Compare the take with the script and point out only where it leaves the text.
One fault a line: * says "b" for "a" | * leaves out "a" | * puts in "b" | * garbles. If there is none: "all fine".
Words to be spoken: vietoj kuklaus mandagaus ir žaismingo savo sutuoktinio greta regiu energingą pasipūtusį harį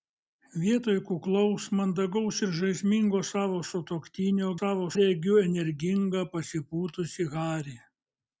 * says "savo" for "greta"